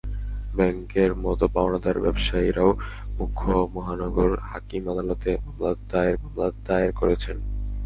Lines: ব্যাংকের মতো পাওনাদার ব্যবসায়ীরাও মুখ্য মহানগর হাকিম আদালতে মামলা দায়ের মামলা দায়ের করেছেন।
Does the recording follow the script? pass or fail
pass